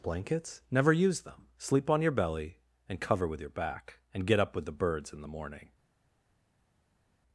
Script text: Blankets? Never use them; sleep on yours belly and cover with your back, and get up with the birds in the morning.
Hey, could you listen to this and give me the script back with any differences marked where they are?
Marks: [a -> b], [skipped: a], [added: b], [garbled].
Blankets? Never use them; sleep on [yours -> your] belly and cover with your back, and get up with the birds in the morning.